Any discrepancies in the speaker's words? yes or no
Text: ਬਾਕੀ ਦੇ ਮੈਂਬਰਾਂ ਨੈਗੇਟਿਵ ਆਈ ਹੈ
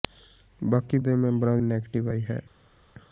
no